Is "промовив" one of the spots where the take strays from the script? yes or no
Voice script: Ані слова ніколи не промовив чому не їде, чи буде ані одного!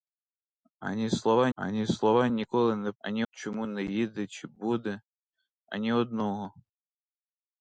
yes